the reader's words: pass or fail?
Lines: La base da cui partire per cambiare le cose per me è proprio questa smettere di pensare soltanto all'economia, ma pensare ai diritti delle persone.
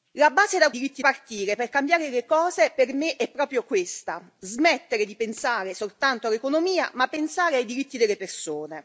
fail